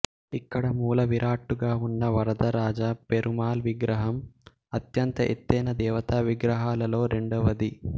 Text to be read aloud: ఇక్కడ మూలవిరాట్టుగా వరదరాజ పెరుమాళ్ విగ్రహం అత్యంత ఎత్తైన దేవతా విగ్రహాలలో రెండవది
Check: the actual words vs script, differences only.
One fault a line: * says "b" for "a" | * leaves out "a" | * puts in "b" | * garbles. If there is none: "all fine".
* puts in "ఉన్న"